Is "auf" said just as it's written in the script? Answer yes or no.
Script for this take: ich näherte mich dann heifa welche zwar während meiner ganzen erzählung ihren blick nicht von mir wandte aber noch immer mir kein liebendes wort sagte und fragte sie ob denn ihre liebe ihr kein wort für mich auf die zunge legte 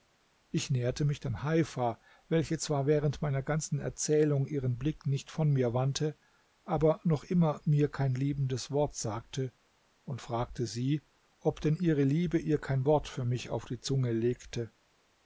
yes